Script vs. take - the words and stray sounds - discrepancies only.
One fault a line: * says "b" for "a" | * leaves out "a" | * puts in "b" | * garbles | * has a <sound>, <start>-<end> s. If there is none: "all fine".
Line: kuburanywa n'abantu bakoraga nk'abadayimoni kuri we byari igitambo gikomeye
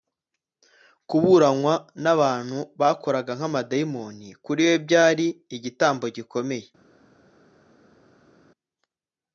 all fine